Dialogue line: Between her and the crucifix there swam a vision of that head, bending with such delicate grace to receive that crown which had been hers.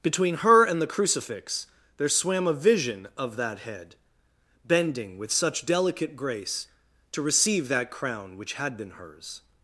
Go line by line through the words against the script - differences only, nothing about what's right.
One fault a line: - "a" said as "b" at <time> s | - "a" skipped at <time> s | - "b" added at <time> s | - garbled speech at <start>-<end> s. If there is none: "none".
none